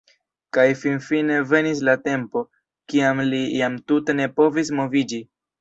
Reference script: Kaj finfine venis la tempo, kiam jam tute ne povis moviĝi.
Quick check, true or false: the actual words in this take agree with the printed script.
false